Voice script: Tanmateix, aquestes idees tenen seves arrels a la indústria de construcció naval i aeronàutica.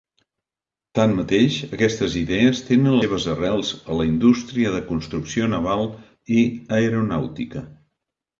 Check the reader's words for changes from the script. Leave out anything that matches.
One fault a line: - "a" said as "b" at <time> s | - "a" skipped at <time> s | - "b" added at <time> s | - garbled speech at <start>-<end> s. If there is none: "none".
none